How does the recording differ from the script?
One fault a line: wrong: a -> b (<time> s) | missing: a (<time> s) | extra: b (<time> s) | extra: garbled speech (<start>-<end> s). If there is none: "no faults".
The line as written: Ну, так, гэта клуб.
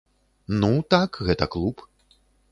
no faults